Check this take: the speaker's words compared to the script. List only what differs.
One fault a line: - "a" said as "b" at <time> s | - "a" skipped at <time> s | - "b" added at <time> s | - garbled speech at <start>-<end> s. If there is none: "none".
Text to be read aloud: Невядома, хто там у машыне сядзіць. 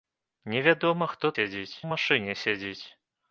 - "там" said as "сядзіць" at 1.3 s